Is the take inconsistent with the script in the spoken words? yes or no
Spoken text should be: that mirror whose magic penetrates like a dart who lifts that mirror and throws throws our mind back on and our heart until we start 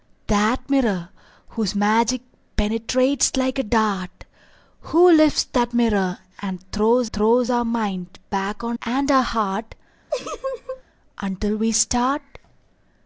no